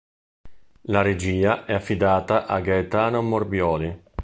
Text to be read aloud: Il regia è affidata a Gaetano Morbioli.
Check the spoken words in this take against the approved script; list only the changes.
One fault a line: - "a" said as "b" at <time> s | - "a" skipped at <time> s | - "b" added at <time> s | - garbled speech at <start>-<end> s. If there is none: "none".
- "Il" said as "La" at 0.8 s